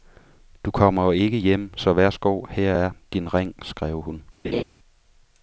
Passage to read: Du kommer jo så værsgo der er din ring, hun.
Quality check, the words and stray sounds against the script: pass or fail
fail